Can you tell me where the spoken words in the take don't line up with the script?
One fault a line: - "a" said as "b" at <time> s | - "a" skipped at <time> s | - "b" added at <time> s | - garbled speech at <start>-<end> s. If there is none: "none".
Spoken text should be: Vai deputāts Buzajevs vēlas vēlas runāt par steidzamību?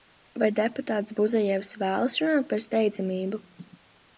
- "vēlas" skipped at 2.1 s